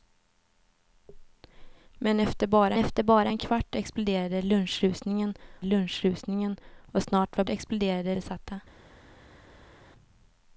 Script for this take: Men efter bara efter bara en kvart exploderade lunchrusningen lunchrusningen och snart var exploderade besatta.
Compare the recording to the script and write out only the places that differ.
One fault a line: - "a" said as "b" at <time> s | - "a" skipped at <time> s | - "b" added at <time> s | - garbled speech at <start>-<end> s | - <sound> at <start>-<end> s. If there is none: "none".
none